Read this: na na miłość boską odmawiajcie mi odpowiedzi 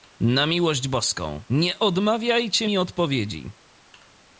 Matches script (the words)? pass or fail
fail